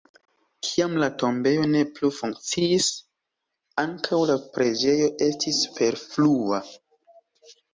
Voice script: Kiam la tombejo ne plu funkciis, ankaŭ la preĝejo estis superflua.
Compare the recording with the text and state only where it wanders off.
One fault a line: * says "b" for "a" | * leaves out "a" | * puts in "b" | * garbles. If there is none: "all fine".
all fine